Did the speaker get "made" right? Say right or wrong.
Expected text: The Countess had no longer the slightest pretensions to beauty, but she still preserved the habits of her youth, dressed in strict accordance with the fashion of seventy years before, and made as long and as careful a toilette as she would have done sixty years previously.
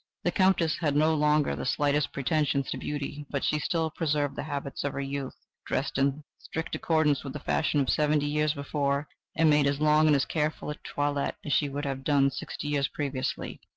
right